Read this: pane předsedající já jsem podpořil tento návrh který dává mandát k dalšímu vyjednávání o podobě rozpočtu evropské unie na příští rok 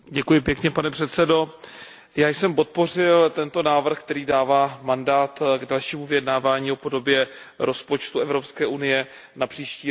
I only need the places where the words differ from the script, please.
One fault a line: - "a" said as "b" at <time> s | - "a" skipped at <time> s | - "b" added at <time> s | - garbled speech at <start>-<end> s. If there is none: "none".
none